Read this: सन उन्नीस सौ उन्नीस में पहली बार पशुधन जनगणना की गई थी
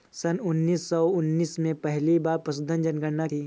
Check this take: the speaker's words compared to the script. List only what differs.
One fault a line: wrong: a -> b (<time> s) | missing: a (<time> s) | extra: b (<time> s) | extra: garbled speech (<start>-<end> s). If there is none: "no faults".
missing: की गई (3.3 s)